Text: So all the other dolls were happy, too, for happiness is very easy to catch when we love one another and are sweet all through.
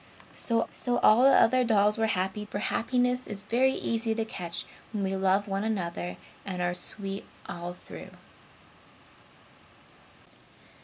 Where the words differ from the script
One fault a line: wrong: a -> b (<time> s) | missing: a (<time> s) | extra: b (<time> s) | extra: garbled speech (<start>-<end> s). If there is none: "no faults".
extra: so (0.7 s)
missing: too (2.4 s)